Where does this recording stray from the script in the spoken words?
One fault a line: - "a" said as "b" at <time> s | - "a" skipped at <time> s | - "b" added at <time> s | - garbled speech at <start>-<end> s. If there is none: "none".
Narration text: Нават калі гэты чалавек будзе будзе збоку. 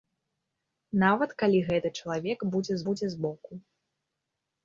none